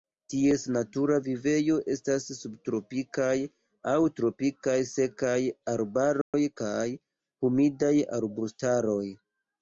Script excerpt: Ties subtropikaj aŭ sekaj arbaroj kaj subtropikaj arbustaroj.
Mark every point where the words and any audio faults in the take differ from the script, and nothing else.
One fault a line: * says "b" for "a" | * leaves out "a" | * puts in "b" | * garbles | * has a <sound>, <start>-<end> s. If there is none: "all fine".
* puts in "natura vivejo estas"
* puts in "tropikaj"
* has a dropout, 6.2-6.3 s
* says "humidaj" for "subtropikaj"